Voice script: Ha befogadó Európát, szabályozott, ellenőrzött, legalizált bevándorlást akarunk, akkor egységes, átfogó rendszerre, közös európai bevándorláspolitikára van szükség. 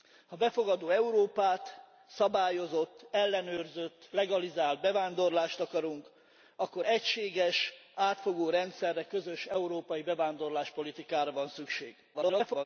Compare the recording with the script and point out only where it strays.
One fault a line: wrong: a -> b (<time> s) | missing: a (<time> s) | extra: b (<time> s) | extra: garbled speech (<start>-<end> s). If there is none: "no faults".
extra: garbled speech (12.1-12.6 s)